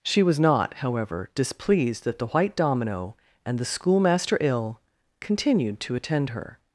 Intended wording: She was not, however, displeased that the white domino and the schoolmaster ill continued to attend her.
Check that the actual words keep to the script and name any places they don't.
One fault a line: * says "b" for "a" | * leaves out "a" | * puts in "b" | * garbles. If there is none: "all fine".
all fine